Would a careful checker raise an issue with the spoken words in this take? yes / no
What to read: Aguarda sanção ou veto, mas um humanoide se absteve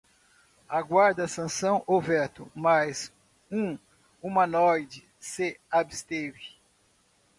no